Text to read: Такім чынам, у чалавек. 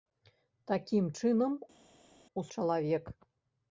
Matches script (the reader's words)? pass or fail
pass